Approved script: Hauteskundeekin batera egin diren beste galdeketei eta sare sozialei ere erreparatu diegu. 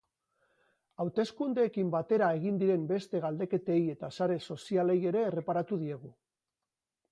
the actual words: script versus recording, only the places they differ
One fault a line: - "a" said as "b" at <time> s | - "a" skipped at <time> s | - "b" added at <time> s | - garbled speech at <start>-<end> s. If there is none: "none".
none